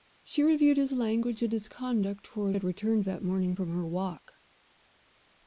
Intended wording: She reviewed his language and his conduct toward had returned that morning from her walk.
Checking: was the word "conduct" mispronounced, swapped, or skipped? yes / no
no